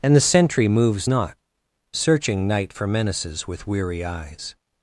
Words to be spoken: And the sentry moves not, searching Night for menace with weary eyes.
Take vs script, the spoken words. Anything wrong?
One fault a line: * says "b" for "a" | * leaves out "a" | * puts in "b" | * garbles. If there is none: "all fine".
* says "menaces" for "menace"